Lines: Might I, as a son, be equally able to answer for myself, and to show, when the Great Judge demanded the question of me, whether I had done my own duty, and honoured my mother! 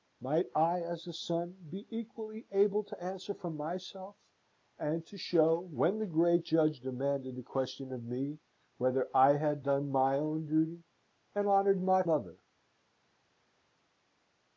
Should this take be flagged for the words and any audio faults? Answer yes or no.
no